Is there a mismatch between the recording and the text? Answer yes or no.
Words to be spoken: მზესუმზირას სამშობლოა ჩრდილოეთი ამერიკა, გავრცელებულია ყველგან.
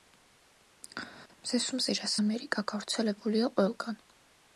yes